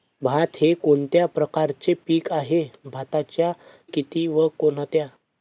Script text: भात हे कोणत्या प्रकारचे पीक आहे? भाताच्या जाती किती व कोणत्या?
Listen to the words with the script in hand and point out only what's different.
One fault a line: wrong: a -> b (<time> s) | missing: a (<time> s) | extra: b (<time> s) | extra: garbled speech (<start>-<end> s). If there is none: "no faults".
missing: जाती (3.5 s)